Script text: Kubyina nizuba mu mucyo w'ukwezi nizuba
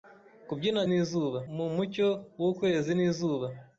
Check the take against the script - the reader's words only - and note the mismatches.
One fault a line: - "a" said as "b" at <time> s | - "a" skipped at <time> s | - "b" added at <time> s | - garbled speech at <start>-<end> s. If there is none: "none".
none